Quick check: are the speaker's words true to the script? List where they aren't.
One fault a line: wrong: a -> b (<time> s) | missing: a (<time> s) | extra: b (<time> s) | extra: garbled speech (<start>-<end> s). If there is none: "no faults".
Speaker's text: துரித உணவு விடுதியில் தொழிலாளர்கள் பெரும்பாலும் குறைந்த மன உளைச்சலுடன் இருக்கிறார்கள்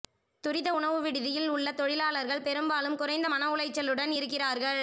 extra: உள்ள (1.5 s)